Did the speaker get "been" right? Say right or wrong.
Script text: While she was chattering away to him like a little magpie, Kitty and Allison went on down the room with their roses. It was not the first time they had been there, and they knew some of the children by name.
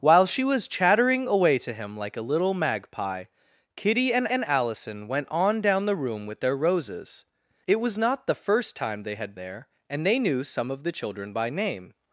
wrong